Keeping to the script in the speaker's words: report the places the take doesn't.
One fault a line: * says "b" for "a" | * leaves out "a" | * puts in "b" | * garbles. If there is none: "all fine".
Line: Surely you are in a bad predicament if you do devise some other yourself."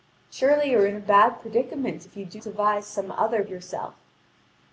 all fine